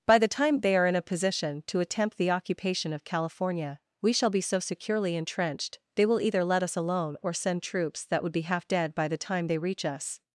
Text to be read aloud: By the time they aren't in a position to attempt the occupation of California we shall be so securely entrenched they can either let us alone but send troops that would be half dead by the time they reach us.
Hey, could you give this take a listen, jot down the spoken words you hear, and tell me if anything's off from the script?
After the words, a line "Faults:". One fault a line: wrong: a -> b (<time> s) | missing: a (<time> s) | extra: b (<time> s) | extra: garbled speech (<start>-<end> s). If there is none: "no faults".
By the time they are in a position to attempt the occupation of California we shall be so securely entrenched they will either let us alone or send troops that would be half dead by the time they reach us.
Faults:
wrong: aren't -> are (0.8 s)
wrong: can -> will (6.0 s)
wrong: but -> or (7.2 s)